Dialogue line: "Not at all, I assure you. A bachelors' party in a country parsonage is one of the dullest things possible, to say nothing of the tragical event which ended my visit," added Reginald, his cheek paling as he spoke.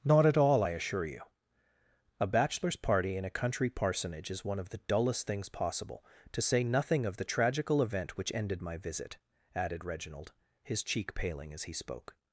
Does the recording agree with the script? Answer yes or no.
yes